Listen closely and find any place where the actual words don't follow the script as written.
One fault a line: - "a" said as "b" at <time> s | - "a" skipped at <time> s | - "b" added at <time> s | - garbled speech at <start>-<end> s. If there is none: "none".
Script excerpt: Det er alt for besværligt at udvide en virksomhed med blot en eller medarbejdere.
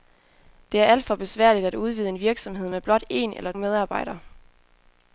none